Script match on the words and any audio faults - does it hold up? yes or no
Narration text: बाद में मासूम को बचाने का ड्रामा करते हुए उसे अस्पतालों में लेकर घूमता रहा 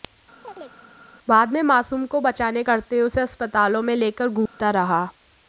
no